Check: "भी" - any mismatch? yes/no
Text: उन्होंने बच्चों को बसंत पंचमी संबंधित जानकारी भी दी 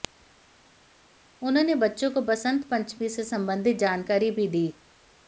no